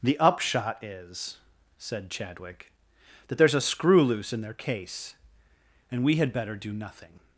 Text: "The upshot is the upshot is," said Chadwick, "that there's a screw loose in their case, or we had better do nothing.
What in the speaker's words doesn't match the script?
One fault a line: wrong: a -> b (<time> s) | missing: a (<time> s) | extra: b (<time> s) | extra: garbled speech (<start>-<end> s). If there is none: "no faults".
missing: the upshot is (1.4 s)
wrong: or -> and (5.9 s)